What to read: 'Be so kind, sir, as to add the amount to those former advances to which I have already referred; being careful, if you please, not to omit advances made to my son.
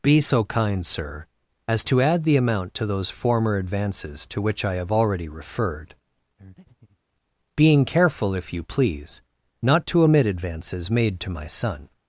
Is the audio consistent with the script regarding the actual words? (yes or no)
yes